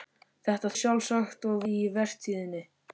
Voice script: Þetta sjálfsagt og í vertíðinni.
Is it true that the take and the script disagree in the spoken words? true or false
false